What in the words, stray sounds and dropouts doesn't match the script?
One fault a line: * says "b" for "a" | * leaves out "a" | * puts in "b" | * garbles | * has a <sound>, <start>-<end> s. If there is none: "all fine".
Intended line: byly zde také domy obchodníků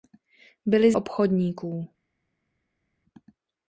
* leaves out "zde také domy"